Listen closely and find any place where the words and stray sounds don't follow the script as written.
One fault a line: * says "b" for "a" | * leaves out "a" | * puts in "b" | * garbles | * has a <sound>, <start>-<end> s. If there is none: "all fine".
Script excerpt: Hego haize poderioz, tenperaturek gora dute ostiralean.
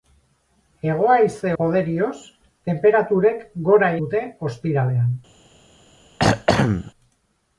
* has a throat clearing, 6.2-6.9 s